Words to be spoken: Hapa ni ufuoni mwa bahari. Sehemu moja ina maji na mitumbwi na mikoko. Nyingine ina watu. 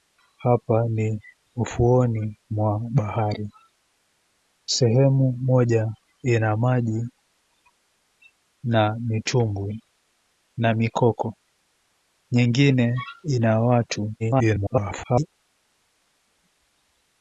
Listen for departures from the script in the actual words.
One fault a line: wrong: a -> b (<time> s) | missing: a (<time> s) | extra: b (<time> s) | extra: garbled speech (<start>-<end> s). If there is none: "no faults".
extra: garbled speech (14.2-15.3 s)